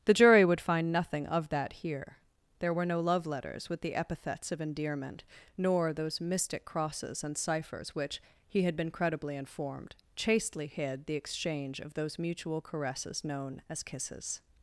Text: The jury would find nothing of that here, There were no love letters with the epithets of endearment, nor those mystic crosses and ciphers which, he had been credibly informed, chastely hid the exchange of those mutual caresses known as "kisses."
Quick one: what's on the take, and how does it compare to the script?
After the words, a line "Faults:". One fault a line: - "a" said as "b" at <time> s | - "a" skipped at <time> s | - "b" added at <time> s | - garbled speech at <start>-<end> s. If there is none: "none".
The jury would find nothing of that here, There were no love letters with the epithets of endearment, nor those mystic crosses and ciphers which, he had been credibly informed, chastely hid the exchange of those mutual caresses known as "kisses."
Faults:
none